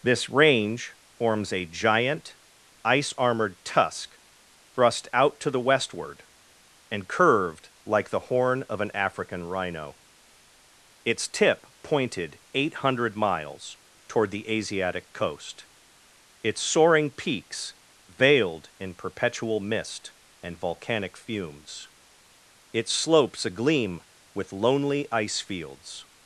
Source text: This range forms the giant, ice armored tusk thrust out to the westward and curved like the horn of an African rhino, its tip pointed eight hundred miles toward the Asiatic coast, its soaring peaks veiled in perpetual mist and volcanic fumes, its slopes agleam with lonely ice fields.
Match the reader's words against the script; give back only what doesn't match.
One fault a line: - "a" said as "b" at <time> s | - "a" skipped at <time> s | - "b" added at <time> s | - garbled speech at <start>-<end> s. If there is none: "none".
- "the" said as "a" at 1.5 s